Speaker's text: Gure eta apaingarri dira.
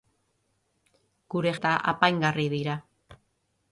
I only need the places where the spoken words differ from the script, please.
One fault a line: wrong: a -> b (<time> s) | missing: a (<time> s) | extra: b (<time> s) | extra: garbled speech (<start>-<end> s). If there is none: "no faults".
no faults